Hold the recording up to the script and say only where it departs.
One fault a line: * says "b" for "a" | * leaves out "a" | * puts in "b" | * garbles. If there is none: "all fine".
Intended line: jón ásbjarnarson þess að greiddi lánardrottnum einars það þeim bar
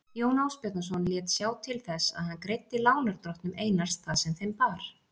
* puts in "lét sjá til"
* puts in "hann"
* puts in "sem"